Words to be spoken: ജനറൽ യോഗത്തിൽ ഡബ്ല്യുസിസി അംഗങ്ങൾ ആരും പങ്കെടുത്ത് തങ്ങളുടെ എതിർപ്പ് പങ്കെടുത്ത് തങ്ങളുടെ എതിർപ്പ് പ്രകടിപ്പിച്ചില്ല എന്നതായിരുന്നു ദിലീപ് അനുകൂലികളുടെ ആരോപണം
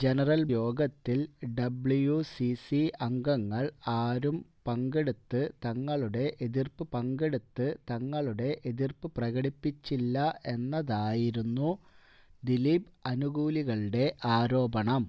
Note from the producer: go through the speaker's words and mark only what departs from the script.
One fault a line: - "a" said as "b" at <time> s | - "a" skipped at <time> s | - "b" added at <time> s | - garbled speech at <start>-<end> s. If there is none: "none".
none